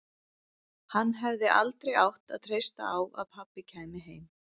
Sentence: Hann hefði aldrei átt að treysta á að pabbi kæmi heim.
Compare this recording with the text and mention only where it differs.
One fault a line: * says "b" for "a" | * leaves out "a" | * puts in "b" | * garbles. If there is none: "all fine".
all fine